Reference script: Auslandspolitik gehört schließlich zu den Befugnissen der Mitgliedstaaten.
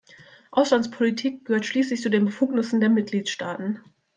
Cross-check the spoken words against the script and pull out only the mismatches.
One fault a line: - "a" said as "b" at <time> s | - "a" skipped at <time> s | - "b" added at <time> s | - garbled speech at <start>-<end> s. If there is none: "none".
none